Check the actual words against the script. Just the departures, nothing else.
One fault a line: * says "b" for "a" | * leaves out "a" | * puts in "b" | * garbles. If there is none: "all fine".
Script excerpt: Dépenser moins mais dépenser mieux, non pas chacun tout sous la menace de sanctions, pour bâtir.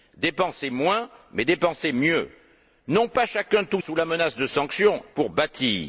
all fine